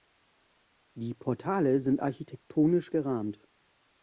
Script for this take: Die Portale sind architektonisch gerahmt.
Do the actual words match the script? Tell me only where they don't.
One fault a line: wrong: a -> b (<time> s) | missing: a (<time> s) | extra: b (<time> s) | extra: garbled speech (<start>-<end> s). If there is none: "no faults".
no faults